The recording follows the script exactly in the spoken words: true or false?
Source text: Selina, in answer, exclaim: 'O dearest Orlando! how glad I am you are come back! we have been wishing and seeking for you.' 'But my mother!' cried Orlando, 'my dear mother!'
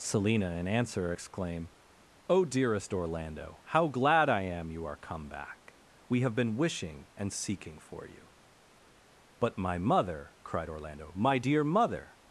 true